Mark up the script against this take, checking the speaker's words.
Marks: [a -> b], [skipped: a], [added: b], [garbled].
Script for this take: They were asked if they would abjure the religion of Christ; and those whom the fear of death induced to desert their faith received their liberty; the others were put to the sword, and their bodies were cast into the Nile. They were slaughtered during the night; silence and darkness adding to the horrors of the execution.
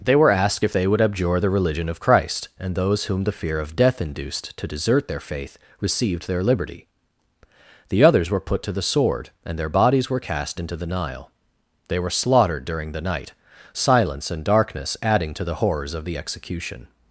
They were asked if they would abjure the religion of Christ; and those whom the fear of death induced to desert their faith received their liberty; the others were put to the sword, and their bodies were cast into the Nile. They were slaughtered during the night; silence and darkness adding to the horrors of the execution.